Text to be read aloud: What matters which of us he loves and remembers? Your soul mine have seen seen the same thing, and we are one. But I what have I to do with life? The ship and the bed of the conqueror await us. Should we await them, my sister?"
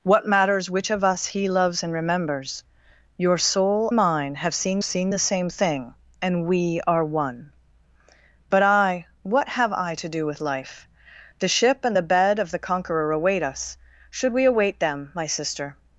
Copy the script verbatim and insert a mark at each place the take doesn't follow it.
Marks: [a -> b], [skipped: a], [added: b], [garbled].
What matters which of us he loves and remembers? Your soul mine have seen seen the same thing, and we are one. But I what have I to do with life? The ship and the bed of the conqueror await us. Should we await them, my sister?"